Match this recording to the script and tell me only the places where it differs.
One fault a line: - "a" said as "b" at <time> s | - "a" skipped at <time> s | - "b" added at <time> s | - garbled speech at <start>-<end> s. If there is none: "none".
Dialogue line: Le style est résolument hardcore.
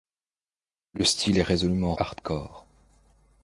none